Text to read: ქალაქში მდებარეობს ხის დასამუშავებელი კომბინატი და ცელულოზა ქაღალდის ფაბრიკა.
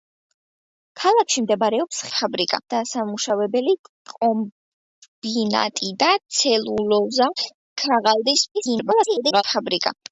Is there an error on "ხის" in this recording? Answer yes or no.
yes